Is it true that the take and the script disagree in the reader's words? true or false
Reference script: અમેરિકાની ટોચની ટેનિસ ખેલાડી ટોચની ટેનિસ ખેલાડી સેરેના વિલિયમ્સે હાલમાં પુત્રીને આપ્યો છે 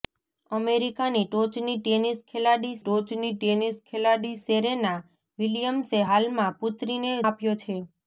false